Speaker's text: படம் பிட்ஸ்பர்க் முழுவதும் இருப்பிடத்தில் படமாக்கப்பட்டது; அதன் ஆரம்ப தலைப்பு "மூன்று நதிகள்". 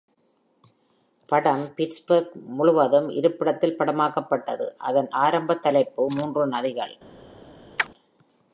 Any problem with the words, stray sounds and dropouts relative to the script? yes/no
yes